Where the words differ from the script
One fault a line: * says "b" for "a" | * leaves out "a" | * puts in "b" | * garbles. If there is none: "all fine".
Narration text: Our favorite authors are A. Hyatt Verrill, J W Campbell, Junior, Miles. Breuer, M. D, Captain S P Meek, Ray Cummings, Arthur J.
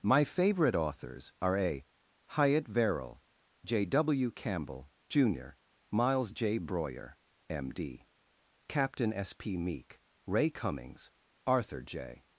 * says "My" for "Our"
* puts in "J"